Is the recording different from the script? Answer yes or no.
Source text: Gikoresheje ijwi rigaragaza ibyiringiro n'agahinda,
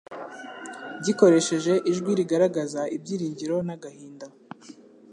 no